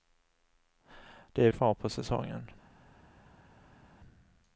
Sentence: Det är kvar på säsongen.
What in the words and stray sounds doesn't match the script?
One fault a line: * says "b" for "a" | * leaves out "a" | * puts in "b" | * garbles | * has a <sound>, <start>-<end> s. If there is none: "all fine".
all fine